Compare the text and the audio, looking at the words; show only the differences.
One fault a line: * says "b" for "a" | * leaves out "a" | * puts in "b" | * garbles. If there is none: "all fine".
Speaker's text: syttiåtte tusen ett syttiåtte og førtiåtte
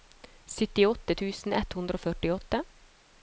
* says "hundre" for "syttiåtte"